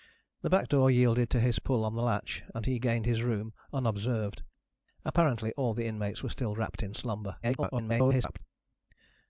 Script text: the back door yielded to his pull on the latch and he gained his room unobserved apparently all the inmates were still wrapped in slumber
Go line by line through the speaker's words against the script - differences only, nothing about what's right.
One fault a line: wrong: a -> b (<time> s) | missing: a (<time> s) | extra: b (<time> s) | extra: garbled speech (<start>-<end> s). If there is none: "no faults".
extra: garbled speech (7.4-8.4 s)